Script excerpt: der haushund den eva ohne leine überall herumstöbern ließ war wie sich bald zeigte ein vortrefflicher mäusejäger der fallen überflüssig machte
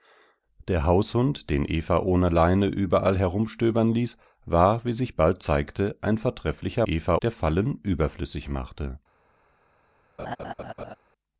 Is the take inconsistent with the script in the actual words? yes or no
yes